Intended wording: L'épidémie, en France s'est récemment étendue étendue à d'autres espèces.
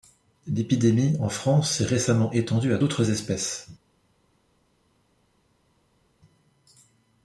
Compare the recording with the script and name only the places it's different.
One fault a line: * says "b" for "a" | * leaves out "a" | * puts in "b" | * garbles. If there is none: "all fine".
* leaves out "étendue"